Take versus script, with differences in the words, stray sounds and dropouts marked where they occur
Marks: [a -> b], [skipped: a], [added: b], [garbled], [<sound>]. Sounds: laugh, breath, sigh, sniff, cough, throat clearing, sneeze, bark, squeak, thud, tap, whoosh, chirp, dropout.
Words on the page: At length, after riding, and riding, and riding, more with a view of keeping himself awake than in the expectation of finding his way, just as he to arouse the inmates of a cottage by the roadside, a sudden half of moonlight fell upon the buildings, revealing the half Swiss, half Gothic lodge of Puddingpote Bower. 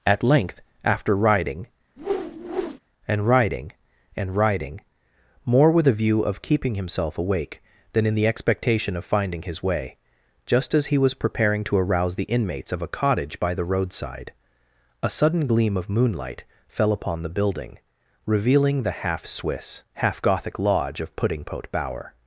At length, after riding, [whoosh] and riding, and riding, more with a view of keeping himself awake than in the expectation of finding his way, just as he [added: was preparing] to arouse the inmates of a cottage by the roadside, a sudden [half -> gleam] of moonlight fell upon the [buildings, -> building] revealing the half Swiss, half Gothic lodge of Puddingpote Bower.